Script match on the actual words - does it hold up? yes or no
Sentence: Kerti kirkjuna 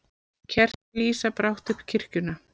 no